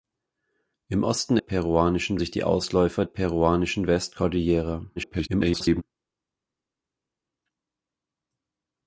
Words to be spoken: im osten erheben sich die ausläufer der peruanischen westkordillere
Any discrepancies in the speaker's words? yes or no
yes